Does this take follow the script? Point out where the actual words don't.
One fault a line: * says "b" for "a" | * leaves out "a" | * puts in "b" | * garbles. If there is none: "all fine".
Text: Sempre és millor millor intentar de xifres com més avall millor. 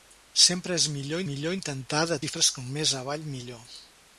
all fine